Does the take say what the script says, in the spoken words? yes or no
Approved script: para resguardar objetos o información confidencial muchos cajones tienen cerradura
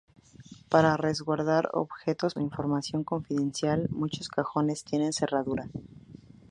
yes